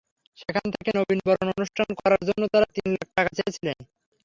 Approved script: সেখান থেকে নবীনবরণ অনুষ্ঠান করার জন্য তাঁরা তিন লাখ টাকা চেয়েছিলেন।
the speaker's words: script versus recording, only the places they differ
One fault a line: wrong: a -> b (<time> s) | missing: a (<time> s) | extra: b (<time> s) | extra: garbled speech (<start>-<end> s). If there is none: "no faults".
no faults